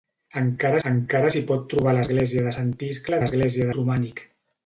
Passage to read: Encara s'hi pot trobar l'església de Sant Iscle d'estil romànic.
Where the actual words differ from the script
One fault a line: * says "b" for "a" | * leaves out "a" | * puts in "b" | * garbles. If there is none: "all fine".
* puts in "encara"
* says "l'església" for "d'estil"